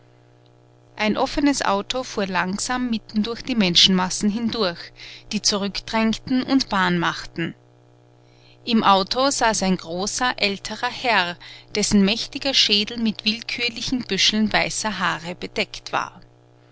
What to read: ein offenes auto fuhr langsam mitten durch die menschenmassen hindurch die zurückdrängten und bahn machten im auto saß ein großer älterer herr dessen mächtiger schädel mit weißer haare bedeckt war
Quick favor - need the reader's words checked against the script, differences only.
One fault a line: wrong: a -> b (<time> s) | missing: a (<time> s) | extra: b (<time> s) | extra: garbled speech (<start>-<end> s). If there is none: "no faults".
extra: willkürlichen büscheln (13.2 s)